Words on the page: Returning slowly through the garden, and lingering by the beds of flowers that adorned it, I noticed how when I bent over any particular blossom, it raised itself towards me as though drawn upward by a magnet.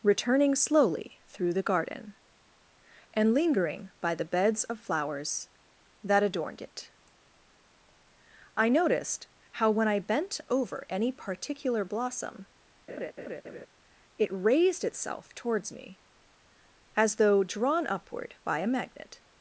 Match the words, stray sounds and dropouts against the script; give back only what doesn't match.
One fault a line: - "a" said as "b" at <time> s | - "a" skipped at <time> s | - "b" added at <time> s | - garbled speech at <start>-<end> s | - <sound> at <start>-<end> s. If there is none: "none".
- laugh at 12.9-13.7 s